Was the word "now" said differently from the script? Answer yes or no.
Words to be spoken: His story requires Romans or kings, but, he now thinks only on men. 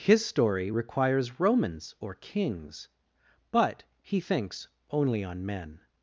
yes